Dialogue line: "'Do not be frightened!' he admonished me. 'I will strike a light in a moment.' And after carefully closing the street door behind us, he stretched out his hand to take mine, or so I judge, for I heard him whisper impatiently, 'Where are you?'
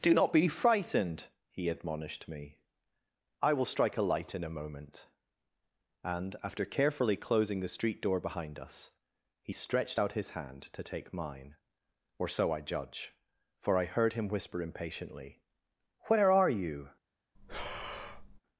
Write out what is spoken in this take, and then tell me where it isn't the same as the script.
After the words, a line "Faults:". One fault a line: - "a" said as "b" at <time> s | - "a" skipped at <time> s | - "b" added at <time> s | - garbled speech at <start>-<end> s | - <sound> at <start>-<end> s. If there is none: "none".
"'Do not be frightened!' he admonished me. 'I will strike a light in a moment.' And after carefully closing the street door behind us, he stretched out his hand to take mine, or so I judge, for I heard him whisper impatiently, 'Where are you?'
Faults:
- breath at 17.4-18.4 s